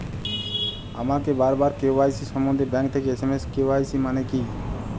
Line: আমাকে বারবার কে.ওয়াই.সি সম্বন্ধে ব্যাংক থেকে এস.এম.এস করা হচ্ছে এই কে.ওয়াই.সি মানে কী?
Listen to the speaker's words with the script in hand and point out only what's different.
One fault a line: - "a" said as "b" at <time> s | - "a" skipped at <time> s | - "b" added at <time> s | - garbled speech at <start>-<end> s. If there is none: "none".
- "করা হচ্ছে এই" skipped at 3.4 s